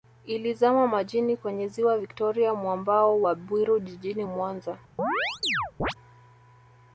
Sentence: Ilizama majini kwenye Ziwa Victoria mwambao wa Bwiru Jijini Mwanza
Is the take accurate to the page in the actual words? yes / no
yes